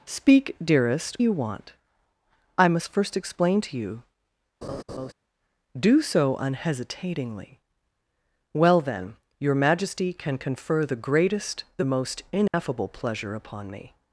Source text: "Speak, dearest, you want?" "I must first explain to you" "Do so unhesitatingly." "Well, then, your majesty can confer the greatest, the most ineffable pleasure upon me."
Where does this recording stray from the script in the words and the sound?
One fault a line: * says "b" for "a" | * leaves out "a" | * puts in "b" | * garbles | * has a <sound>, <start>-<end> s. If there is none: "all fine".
* has a laugh, 4.6-5.1 s
* has a dropout, 12.5-12.5 s